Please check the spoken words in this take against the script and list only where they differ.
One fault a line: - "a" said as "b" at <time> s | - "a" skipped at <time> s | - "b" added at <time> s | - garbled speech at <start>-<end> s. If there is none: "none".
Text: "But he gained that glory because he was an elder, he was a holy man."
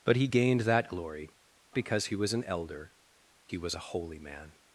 none